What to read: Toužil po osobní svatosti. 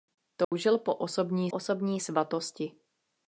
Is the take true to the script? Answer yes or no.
no